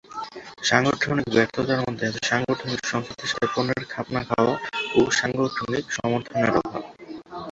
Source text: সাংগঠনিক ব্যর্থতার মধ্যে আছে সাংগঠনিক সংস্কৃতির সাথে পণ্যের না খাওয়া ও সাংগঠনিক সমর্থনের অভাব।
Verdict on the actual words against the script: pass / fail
fail